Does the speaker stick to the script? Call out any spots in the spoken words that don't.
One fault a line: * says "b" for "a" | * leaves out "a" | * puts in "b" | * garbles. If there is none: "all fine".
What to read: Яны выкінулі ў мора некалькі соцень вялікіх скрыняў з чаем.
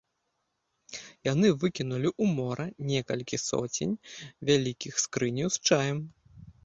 all fine